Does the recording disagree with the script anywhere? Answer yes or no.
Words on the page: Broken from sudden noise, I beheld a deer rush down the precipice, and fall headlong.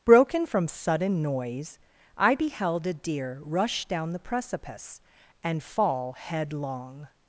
no